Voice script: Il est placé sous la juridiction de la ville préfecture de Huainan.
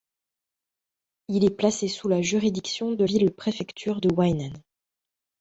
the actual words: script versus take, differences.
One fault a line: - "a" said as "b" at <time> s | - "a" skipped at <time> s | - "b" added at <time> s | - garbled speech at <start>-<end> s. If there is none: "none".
- "la" skipped at 3.0 s